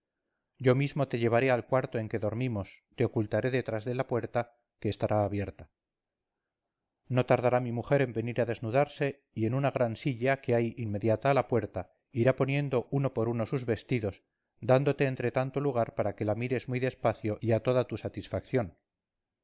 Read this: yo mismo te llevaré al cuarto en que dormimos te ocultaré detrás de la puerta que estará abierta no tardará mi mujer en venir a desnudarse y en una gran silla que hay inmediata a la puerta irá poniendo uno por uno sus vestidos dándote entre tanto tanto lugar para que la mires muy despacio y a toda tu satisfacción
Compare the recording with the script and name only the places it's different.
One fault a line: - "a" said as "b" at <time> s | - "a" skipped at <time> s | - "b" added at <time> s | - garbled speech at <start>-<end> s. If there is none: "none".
- "tanto" skipped at 15.6 s